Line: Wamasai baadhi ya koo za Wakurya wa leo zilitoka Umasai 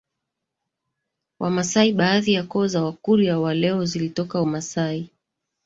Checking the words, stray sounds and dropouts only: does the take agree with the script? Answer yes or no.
yes